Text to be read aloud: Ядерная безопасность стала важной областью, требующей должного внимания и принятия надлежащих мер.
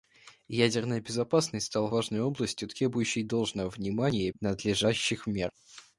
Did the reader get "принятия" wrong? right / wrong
wrong